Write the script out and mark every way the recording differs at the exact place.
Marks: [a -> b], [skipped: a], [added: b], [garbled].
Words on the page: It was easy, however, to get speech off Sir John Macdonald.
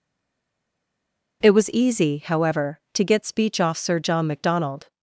It was easy, however, to get speech off Sir John Macdonald.